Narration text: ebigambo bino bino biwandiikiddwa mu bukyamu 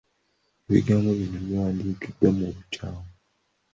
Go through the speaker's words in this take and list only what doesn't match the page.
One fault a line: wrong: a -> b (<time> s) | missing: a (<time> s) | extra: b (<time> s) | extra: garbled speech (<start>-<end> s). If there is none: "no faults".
missing: bino (1.4 s)